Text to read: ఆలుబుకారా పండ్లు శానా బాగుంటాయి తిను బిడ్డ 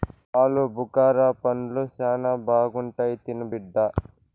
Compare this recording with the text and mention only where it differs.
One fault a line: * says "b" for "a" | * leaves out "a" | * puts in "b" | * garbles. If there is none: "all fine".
all fine